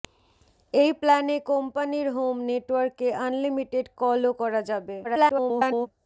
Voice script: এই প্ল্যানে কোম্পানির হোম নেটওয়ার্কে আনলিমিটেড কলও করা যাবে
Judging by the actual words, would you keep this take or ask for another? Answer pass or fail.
fail